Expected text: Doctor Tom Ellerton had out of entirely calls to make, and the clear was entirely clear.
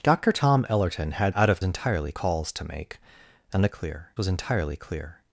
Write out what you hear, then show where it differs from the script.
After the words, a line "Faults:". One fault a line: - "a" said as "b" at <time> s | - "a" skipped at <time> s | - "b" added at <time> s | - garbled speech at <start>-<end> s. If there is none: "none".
Doctor Tom Ellerton had out of entirely calls to make, and the clear was entirely clear.
Faults:
none